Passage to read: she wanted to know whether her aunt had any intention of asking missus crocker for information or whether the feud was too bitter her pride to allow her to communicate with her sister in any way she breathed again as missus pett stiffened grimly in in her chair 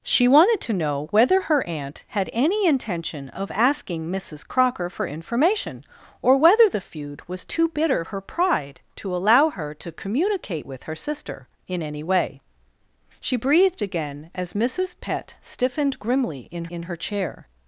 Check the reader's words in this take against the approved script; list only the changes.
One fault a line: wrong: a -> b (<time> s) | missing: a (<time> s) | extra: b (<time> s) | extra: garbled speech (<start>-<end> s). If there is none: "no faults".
no faults